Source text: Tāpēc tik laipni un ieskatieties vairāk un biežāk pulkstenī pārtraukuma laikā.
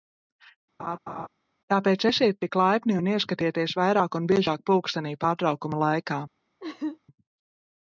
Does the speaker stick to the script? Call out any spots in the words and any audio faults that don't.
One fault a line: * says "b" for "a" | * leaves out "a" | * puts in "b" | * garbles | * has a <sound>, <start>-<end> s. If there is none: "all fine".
* has a laugh, 0.8-1.3 s
* puts in "esiet"
* has a laugh, 6.6-7.0 s